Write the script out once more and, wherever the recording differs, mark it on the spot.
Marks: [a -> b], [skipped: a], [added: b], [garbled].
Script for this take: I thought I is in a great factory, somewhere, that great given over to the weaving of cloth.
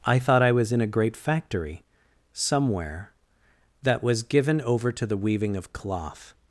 I thought I [is -> was] in a great factory, somewhere, that [great -> was] given over to the weaving of cloth.